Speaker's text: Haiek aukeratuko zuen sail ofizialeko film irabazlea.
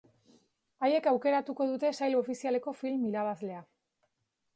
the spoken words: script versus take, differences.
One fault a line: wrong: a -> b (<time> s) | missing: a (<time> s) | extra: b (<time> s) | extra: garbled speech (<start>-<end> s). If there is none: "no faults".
wrong: zuen -> dute (1.7 s)